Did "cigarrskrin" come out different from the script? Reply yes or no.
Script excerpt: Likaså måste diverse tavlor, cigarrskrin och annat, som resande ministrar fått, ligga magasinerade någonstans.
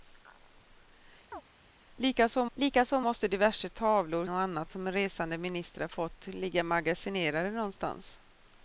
yes